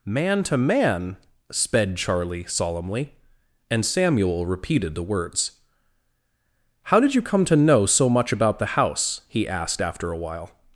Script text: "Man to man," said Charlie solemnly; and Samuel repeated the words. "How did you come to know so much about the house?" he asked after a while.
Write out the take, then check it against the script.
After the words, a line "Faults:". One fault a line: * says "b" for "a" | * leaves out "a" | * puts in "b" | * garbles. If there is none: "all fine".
"Man to man," sped Charlie solemnly; and Samuel repeated the words. "How did you come to know so much about the house?" he asked after a while.
Faults:
* says "sped" for "said"